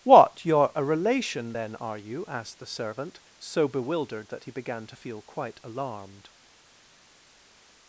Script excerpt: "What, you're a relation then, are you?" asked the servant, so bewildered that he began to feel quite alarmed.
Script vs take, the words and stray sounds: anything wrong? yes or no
no